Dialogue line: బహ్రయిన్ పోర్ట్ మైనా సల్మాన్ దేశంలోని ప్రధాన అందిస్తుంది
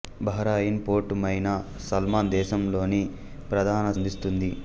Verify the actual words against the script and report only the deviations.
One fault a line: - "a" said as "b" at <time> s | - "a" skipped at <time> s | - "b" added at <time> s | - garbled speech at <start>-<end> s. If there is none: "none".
none